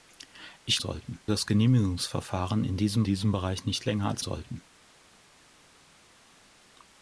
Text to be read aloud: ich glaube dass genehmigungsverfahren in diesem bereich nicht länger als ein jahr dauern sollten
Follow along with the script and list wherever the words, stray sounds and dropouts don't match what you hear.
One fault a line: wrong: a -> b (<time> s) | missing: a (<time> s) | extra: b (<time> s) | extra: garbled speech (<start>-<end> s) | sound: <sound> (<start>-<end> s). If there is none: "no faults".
wrong: glaube -> sollten (0.8 s)
extra: diesem (3.0 s)
missing: ein jahr dauern (4.2 s)